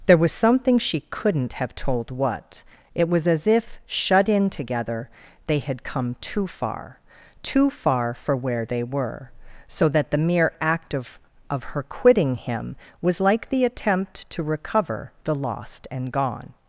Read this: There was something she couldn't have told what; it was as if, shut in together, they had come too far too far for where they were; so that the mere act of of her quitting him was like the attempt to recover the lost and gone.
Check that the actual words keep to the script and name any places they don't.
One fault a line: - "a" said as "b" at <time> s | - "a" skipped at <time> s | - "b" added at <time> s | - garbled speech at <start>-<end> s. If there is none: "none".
none